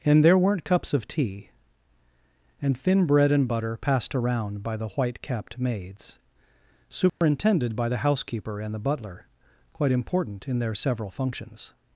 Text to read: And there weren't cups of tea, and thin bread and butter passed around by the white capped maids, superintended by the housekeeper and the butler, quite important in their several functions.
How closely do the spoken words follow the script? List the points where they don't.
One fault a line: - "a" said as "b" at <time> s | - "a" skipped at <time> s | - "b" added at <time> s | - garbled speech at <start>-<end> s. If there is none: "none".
none